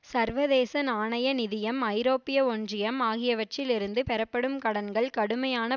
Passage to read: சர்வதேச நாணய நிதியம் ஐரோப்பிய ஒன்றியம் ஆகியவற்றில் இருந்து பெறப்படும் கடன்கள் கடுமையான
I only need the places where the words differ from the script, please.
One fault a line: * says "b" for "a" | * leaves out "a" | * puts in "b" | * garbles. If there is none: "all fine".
all fine